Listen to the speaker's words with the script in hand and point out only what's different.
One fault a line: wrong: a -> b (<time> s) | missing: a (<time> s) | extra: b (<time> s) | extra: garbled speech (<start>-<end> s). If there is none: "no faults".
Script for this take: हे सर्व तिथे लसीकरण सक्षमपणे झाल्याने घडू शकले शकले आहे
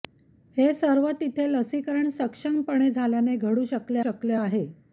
no faults